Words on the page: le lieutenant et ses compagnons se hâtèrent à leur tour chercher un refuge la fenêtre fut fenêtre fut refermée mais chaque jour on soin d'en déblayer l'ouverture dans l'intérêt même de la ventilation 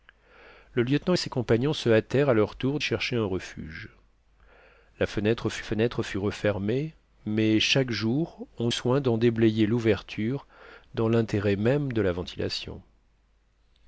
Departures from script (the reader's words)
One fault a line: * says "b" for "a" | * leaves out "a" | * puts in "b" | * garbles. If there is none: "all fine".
all fine